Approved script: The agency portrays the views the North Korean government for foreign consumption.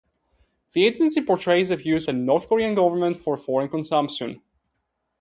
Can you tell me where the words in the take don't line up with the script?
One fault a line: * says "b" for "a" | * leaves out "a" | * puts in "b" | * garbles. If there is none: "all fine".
all fine